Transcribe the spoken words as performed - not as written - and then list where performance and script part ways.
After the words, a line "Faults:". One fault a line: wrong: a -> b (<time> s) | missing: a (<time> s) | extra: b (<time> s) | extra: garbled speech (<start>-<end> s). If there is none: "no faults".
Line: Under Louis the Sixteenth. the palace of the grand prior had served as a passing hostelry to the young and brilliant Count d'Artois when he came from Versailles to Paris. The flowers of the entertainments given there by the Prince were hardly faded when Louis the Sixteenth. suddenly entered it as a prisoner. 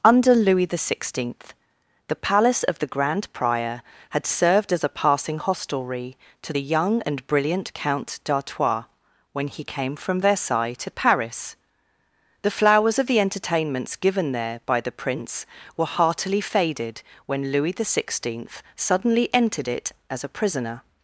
Under Louis the Sixteenth. the palace of the grand prior had served as a passing hostelry to the young and brilliant Count d'Artois when he came from Versailles to Paris. The flowers of the entertainments given there by the Prince were heartily faded when Louis the Sixteenth. suddenly entered it as a prisoner.
Faults:
wrong: hardly -> heartily (15.9 s)